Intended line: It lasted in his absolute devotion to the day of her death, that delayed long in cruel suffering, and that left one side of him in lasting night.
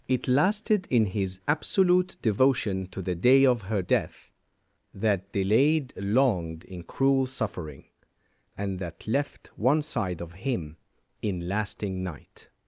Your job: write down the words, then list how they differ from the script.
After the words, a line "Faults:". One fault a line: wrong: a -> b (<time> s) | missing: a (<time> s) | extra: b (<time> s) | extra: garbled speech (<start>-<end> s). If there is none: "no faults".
It lasted in his absolute devotion to the day of her death, that delayed long in cruel suffering, and that left one side of him in lasting night.
Faults:
no faults